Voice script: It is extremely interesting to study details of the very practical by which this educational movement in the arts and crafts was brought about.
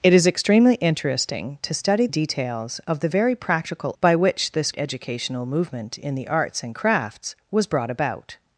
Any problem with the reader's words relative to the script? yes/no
no